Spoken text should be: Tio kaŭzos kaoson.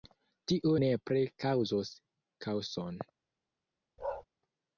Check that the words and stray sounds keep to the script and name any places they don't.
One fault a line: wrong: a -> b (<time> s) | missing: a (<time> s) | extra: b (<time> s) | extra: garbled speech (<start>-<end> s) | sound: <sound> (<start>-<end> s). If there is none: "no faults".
extra: nepre (0.8 s)
sound: bark (4.0-4.2 s)